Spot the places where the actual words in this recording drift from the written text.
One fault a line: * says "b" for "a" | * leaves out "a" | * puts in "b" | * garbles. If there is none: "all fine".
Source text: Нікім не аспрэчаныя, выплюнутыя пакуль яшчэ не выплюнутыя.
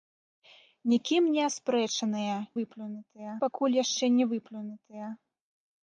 all fine